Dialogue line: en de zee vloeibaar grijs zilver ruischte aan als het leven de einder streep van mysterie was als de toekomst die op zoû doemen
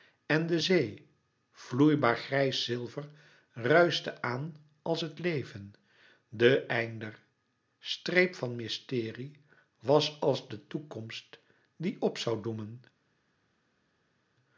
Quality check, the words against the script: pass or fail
pass